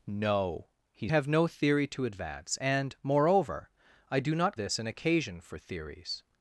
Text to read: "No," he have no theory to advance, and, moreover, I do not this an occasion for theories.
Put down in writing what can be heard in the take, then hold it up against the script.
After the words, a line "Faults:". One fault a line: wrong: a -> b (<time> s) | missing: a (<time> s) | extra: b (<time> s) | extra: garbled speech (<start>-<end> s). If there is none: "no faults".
"No," he have no theory to advance, and, moreover, I do not this an occasion for theories.
Faults:
no faults